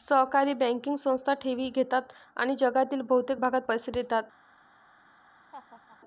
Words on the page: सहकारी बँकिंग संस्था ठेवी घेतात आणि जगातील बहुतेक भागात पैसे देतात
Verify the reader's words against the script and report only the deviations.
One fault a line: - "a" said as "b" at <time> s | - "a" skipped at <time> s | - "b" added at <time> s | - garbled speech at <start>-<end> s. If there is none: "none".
none